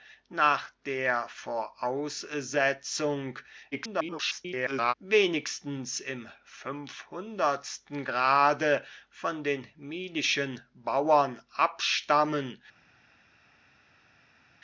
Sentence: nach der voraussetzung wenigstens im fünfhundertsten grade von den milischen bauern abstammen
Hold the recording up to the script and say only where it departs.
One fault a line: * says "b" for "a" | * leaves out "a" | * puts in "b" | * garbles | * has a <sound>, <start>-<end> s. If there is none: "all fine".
* garbles